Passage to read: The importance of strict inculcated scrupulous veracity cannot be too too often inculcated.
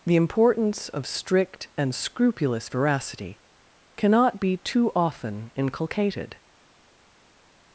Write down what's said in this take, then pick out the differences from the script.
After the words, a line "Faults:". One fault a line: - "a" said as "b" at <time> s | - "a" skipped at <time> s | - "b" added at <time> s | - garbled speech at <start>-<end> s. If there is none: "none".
The importance of strict and scrupulous veracity cannot be too often inculcated.
Faults:
- "inculcated" said as "and" at 1.8 s
- "too" skipped at 4.9 s